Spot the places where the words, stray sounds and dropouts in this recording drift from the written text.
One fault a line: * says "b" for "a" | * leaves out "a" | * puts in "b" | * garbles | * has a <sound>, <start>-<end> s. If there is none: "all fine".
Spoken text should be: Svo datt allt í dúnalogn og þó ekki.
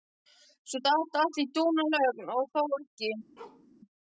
* has a bark, 3.4-3.7 s